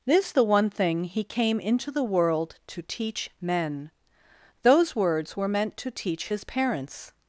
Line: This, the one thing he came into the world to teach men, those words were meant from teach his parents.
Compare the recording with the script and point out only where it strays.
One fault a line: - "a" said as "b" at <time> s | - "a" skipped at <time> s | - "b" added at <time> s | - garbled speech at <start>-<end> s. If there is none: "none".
- "from" said as "to" at 5.8 s